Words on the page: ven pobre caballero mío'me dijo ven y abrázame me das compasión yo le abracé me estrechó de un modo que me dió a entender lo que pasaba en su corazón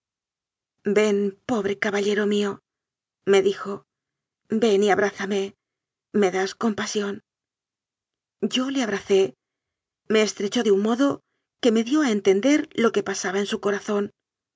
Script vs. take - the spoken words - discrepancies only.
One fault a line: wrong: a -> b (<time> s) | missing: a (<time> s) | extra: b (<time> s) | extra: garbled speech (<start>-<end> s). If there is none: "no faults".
no faults